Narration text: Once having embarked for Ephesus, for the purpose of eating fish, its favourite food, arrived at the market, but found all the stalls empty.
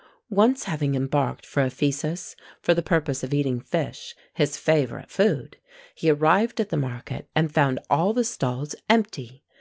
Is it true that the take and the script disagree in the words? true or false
true